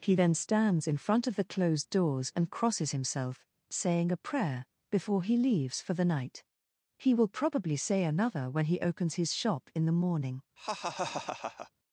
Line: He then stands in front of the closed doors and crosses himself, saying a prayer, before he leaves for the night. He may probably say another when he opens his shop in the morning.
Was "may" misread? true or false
true